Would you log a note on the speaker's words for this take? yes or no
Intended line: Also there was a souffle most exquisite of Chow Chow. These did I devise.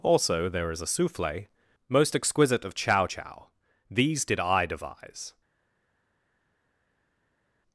yes